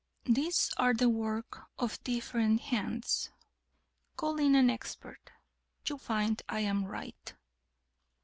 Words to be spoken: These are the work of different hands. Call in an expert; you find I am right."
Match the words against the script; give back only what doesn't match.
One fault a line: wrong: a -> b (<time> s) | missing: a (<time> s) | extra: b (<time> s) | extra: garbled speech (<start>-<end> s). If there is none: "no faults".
no faults